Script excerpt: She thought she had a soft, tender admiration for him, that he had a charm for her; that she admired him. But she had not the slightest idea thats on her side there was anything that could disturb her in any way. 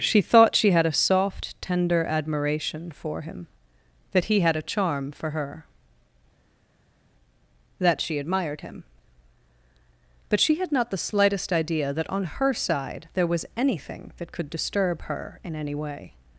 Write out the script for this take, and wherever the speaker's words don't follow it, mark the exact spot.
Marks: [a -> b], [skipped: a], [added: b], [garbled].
She thought she had a soft, tender admiration for him, that he had a charm for her; that she admired him. But she had not the slightest idea [thats -> that] on her side there was anything that could disturb her in any way.